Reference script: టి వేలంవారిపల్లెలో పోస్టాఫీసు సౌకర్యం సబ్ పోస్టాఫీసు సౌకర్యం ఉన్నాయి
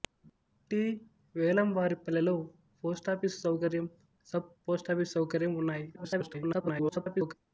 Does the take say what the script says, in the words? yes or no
no